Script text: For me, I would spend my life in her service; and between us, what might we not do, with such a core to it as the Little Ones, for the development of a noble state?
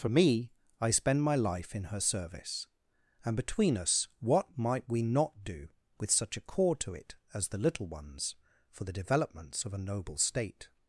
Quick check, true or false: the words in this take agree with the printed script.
false